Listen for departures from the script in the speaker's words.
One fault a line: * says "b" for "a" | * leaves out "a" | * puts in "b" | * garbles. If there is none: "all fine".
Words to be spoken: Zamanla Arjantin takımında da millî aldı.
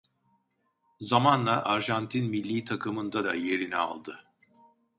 * puts in "millî"
* says "yerini" for "millî"